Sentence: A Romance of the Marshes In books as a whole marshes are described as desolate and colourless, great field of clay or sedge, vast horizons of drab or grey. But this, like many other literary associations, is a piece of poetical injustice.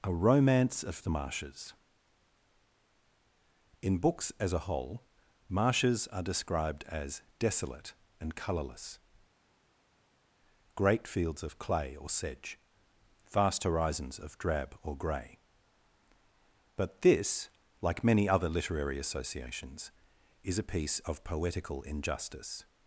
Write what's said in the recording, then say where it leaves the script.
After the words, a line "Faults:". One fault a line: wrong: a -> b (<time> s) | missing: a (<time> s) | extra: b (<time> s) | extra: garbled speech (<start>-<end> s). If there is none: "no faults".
A Romance of the Marshes In books as a whole marshes are described as desolate and colourless, great fields of clay or sedge, vast horizons of drab or grey. But this, like many other literary associations, is a piece of poetical injustice.
Faults:
wrong: field -> fields (11.1 s)